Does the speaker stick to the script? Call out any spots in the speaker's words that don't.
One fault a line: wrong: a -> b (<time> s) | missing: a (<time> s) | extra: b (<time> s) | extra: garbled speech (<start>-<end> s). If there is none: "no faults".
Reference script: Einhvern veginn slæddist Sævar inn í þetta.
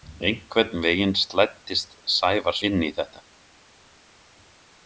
no faults